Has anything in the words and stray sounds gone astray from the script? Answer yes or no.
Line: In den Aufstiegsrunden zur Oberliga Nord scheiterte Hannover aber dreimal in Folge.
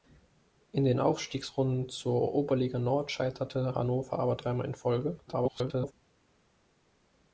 yes